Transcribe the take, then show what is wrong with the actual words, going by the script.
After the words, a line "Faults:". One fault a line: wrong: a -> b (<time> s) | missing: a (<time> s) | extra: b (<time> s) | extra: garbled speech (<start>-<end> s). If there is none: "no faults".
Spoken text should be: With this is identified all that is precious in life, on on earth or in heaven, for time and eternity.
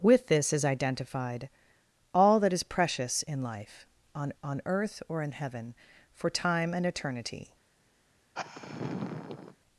With this is identified all that is precious in life, on on earth or in heaven, for time and eternity.
Faults:
no faults